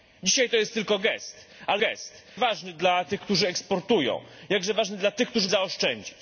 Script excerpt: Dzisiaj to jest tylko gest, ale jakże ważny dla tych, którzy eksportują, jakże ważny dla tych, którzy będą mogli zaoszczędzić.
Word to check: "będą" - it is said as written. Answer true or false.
false